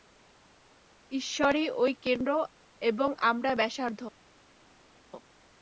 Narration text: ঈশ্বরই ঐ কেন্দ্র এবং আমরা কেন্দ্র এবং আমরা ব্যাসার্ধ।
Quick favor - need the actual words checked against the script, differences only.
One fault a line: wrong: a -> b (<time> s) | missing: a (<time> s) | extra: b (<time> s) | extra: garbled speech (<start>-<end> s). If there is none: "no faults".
missing: কেন্দ্র এবং আমরা (3.5 s)